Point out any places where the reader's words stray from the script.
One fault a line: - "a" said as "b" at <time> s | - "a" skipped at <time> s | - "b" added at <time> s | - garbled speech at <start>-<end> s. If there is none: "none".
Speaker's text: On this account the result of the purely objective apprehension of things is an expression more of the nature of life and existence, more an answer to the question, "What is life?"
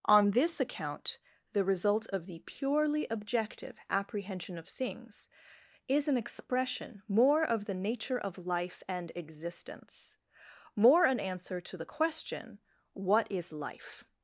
none